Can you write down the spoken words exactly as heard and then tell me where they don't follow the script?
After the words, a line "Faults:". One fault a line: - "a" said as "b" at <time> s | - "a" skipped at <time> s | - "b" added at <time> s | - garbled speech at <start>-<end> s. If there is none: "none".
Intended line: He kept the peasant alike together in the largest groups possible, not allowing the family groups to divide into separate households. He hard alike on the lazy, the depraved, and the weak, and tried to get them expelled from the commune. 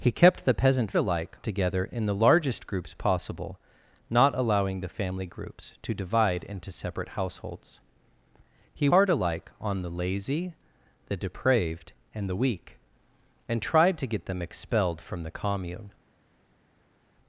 He kept the peasant alike together in the largest groups possible, not allowing the family groups to divide into separate households. He hard alike on the lazy, the depraved, and the weak, and tried to get them expelled from the commune.
Faults:
none